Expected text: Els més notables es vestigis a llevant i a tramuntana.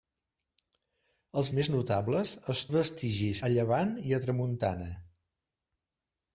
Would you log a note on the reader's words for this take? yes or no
no